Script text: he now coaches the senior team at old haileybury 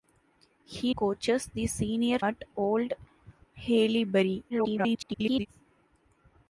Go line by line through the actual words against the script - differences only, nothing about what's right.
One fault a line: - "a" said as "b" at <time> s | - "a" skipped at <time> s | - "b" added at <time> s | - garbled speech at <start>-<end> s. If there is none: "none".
- "now" skipped at 0.9 s
- "team" skipped at 2.2 s
- garbled speech at 4.5-5.5 s